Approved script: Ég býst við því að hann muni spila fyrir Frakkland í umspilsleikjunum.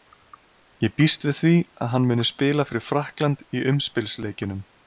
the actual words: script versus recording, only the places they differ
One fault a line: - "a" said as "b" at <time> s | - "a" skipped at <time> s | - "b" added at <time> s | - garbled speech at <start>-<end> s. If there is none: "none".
none